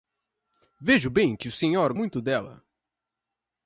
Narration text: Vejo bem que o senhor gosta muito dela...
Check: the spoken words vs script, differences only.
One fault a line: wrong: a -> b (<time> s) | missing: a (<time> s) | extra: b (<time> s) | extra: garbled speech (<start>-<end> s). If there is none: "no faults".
missing: gosta (1.9 s)